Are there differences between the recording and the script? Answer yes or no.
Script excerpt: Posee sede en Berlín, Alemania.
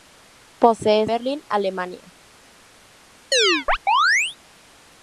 yes